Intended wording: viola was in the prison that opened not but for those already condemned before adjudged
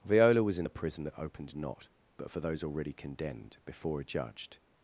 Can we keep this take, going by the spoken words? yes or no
yes